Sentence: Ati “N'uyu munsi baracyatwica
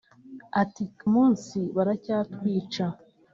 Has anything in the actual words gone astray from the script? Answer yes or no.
yes